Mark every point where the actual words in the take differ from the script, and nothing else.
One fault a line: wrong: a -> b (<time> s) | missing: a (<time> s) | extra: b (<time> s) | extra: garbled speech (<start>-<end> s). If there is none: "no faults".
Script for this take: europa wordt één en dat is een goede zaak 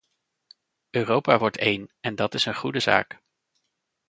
no faults